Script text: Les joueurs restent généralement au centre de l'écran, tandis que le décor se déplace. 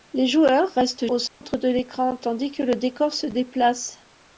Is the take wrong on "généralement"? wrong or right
wrong